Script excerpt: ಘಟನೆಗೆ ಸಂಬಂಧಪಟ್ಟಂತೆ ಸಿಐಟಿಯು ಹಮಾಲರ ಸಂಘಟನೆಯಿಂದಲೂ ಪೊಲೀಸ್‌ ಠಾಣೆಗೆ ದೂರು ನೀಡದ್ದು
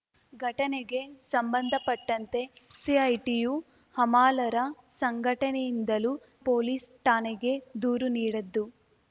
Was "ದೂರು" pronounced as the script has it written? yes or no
yes